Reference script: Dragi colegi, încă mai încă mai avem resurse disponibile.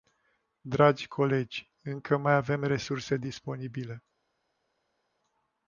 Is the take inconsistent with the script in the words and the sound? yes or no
yes